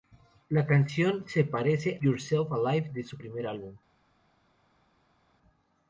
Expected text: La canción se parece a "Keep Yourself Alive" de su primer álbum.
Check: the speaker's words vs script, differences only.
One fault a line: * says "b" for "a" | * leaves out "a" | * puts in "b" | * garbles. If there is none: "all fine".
* leaves out "a Keep"